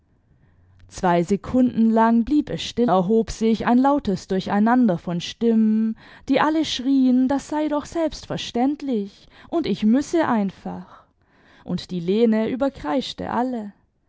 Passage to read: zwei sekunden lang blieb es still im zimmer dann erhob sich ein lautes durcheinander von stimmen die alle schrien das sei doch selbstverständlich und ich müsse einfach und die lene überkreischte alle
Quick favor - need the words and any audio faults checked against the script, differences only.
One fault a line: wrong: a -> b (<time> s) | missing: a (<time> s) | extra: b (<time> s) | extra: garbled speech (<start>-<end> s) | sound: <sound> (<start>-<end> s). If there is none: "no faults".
missing: im zimmer dann (2.9 s)